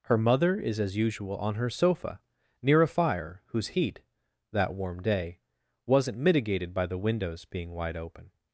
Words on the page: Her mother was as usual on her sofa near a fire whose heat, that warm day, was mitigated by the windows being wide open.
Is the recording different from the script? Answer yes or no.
yes